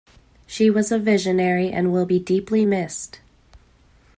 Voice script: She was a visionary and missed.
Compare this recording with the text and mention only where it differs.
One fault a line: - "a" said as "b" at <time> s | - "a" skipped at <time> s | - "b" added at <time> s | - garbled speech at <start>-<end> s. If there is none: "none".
- "will be deeply" added at 1.9 s